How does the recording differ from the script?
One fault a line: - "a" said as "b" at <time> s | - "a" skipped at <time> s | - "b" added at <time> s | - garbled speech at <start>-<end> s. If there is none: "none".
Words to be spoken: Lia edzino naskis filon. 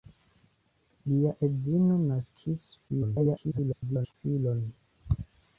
- garbled speech at 2.9-4.1 s